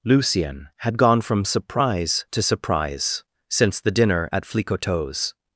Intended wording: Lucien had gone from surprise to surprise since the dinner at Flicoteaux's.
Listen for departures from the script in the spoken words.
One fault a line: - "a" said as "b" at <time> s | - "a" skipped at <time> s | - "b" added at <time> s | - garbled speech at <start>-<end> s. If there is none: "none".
none